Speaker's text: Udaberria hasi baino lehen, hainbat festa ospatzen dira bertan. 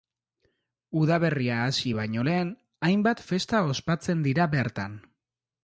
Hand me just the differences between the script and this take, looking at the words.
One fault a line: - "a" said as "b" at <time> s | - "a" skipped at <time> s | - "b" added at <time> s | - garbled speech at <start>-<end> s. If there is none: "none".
none